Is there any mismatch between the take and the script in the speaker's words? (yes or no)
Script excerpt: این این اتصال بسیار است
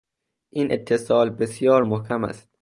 yes